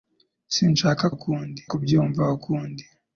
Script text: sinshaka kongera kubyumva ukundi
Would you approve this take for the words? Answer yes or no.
no